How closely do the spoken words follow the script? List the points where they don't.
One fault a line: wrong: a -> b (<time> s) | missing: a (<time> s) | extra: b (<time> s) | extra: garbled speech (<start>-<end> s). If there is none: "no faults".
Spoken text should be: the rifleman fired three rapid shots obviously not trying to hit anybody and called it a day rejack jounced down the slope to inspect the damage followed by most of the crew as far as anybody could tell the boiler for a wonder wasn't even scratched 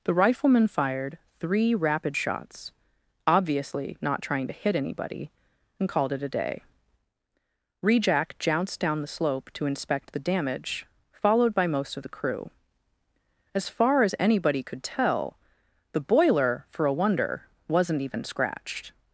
no faults